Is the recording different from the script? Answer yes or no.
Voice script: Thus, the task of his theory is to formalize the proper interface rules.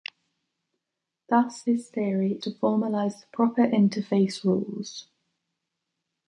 yes